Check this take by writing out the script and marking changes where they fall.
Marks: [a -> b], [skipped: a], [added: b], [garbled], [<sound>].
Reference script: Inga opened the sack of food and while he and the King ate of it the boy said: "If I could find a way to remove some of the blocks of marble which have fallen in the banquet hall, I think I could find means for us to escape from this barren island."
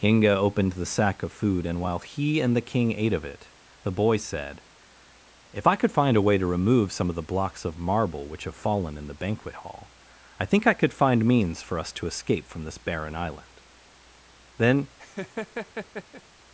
Inga opened the sack of food and while he and the King ate of it the boy said: "If I could find a way to remove some of the blocks of marble which have fallen in the banquet hall, I think I could find means for us to escape from this barren island." [added: Then] [laugh]